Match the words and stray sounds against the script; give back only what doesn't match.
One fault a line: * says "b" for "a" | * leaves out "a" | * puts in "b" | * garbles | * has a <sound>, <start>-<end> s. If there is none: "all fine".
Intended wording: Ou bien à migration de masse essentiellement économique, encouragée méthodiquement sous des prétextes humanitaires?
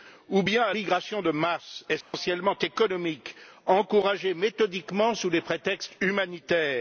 * has a dropout, 2.0-2.1 s